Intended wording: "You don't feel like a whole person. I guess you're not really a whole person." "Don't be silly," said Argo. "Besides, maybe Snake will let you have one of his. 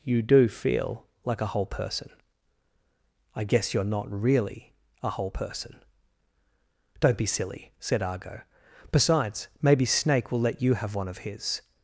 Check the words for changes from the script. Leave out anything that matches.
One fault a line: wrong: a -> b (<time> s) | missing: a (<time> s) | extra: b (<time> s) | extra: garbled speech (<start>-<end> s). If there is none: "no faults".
wrong: don't -> do (0.2 s)